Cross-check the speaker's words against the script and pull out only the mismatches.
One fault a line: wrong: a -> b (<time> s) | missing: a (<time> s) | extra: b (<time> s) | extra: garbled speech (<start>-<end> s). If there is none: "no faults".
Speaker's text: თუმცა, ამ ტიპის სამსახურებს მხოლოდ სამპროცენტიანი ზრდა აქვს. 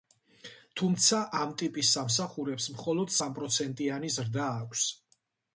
no faults